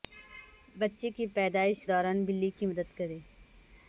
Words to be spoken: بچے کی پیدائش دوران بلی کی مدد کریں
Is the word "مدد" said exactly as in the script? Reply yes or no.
yes